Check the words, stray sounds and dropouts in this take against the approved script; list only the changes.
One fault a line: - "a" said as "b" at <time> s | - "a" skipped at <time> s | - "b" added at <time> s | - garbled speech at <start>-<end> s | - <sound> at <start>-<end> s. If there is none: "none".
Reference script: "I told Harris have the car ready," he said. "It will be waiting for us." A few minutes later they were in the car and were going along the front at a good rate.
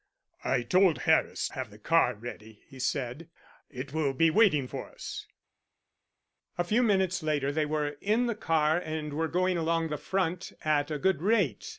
none